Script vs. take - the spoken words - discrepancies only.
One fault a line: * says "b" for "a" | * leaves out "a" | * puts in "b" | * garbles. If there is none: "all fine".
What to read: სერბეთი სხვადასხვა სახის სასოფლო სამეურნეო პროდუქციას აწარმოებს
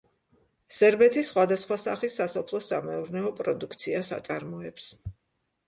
all fine